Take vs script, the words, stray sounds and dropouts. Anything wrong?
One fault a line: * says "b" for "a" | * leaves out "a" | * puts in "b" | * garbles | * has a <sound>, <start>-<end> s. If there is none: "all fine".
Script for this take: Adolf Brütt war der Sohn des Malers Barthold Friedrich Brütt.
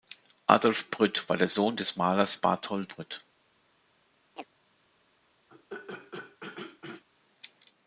* leaves out "Friedrich"
* has a chirp, 4.4-4.5 s
* has a throat clearing, 5.5-7.0 s